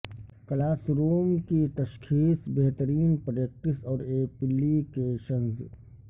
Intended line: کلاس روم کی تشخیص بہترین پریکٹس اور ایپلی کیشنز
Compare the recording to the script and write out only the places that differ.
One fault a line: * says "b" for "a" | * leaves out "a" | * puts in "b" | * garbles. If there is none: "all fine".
all fine